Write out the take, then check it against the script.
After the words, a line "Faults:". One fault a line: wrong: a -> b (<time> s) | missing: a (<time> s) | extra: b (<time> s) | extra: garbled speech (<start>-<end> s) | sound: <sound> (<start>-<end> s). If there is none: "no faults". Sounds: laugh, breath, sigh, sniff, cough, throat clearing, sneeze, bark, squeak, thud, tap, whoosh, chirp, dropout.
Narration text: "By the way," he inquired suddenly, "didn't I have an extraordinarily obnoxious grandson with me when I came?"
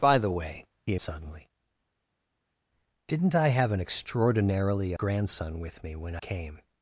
"By the way," he suddenly, "didn't I have an extraordinarily grandson with me when came?"
Faults:
missing: inquired (0.9 s)
missing: obnoxious (5.0 s)
missing: I (6.2 s)